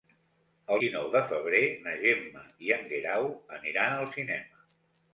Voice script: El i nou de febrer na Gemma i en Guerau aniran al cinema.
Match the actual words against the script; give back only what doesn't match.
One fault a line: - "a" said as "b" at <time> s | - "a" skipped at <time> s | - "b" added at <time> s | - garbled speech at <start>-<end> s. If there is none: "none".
none